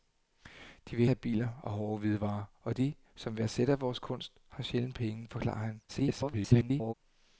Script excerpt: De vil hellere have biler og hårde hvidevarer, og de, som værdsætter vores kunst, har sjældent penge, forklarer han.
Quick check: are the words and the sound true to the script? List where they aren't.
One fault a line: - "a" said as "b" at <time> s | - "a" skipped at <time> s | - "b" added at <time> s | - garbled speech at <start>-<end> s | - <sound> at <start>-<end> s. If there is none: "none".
- "hellere" skipped at 1.1 s
- garbled speech at 5.9-6.9 s